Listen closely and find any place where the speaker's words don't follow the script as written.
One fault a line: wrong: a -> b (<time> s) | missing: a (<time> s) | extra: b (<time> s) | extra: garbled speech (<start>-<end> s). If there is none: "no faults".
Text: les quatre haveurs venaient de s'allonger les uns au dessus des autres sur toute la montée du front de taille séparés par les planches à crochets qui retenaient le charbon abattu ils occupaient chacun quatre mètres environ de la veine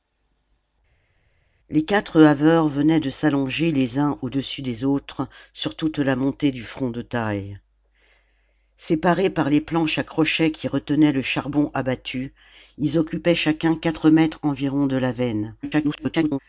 extra: garbled speech (15.6-16.4 s)